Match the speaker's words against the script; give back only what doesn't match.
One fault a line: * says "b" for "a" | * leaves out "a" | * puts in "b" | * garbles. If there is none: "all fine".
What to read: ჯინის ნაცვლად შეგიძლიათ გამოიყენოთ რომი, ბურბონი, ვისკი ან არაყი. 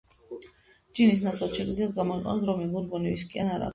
all fine